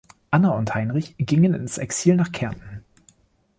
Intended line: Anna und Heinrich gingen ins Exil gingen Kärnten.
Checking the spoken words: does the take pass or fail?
fail